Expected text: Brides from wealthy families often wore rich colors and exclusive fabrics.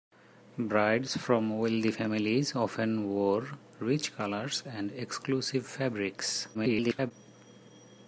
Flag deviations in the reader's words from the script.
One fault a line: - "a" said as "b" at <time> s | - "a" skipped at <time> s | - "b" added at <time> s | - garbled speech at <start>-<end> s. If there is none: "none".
- garbled speech at 6.5-7.1 s